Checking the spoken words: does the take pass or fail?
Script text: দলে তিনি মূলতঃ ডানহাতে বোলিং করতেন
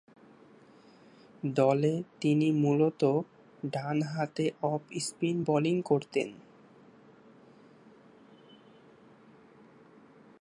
fail